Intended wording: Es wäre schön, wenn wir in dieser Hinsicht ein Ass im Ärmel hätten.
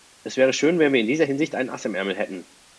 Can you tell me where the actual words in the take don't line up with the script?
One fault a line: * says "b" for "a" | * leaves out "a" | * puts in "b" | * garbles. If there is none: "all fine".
all fine